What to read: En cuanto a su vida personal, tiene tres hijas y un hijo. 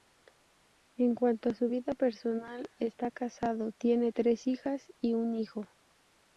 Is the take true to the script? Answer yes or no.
no